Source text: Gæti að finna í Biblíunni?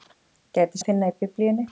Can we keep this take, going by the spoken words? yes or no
yes